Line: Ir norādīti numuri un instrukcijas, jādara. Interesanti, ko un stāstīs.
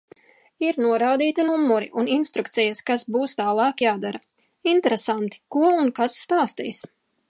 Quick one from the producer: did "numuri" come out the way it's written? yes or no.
yes